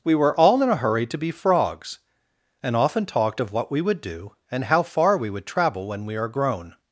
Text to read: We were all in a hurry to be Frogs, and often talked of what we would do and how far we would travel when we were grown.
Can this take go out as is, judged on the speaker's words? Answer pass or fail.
fail